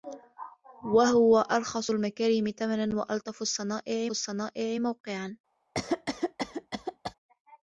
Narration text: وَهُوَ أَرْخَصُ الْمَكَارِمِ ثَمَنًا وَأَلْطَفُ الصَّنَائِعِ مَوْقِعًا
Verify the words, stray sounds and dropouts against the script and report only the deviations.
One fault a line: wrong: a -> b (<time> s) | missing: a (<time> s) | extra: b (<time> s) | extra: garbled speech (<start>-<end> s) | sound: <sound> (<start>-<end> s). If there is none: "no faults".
extra: الصَّنَائِعِ (4.1 s)
sound: cough (5.7-7.1 s)